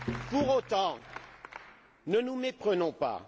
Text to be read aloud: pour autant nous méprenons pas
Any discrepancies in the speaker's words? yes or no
yes